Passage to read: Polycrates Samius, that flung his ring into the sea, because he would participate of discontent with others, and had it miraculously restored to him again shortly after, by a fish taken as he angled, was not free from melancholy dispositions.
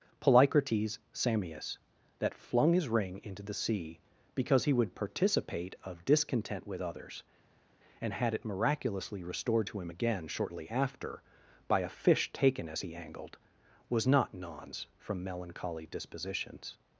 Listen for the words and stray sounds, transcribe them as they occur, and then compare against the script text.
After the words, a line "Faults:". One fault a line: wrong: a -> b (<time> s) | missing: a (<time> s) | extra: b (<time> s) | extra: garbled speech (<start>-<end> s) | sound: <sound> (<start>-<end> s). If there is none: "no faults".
Polycrates Samius, that flung his ring into the sea, because he would participate of discontent with others, and had it miraculously restored to him again shortly after, by a fish taken as he angled, was not nons from melancholy dispositions.
Faults:
wrong: free -> nons (14.3 s)